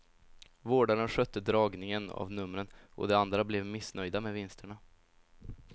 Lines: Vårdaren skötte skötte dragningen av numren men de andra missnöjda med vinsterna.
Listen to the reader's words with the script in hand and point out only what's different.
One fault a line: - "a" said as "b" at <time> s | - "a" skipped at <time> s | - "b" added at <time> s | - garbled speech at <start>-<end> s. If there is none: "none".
- "skötte" skipped at 1.4 s
- "men" said as "och" at 3.0 s
- "blev" added at 3.4 s